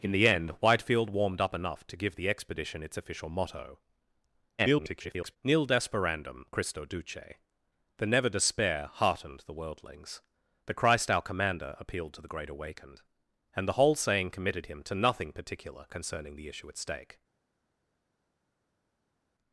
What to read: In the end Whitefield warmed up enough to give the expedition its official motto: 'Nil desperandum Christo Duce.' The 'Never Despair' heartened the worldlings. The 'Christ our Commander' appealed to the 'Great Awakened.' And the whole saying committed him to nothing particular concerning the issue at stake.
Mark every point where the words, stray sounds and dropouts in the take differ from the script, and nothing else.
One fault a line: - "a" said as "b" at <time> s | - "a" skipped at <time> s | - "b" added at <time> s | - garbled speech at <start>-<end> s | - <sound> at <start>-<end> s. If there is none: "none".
- garbled speech at 4.6-5.4 s